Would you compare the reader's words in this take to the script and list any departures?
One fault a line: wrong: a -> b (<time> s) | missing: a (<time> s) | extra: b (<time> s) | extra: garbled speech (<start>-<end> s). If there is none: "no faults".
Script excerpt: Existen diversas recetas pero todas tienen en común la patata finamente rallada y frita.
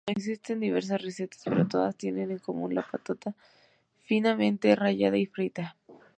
no faults